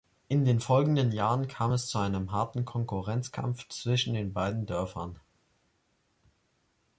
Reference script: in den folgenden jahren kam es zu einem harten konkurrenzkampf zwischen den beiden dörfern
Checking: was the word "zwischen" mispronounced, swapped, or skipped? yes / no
no